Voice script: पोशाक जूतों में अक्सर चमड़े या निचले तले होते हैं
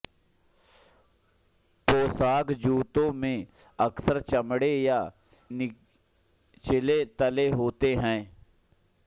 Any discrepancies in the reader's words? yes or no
no